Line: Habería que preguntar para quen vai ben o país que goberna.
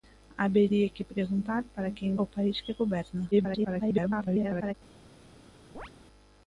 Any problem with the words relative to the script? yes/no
yes